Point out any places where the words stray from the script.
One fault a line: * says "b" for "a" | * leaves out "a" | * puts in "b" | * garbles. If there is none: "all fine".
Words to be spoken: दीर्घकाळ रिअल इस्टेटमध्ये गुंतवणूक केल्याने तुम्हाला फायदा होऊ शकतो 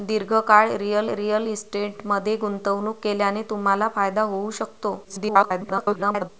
* puts in "रिअल"
* garbles